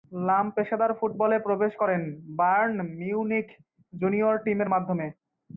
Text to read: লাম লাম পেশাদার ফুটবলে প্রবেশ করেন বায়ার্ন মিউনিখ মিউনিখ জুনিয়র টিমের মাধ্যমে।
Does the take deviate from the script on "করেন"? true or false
false